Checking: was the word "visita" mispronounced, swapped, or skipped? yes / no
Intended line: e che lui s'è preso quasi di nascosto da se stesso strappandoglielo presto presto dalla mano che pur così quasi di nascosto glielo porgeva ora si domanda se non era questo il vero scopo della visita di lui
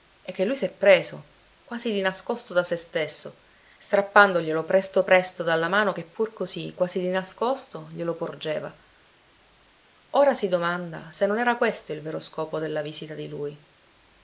no